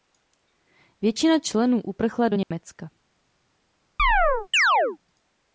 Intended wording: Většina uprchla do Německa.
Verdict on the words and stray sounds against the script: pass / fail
fail